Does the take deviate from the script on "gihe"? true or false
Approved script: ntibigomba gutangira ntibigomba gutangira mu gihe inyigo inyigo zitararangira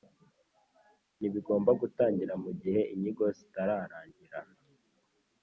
false